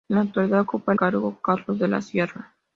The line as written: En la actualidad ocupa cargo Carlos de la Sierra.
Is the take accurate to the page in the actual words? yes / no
yes